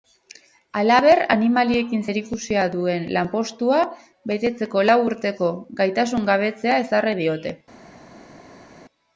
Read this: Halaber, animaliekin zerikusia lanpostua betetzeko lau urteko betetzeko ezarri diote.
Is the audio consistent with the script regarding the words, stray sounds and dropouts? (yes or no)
no